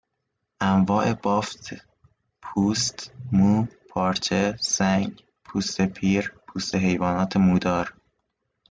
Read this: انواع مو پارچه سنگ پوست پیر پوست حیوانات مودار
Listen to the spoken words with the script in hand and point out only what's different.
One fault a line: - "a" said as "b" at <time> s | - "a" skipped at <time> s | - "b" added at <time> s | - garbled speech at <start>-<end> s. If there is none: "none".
- "بافت پوست" added at 1.1 s